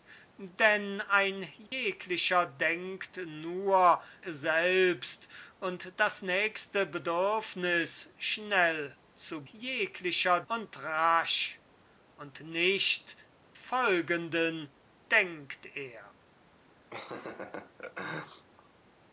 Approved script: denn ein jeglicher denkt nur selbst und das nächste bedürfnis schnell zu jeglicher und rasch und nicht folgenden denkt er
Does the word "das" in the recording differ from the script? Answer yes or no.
no